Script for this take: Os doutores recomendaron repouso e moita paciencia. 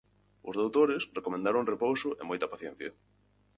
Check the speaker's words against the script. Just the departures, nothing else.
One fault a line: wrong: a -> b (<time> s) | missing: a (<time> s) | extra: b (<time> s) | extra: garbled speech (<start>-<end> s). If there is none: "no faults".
no faults